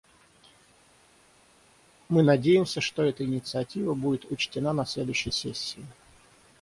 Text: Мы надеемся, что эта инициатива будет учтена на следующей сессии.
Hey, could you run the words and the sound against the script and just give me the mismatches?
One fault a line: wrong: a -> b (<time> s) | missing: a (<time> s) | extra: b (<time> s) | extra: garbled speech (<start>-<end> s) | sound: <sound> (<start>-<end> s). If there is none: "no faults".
no faults